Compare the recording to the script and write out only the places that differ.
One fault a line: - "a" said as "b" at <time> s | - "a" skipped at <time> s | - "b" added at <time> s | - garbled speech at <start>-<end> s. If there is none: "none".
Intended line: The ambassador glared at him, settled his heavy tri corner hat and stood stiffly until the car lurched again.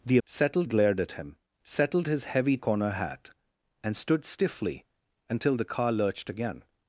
- "ambassador" said as "settled" at 0.3 s
- "tri" skipped at 2.6 s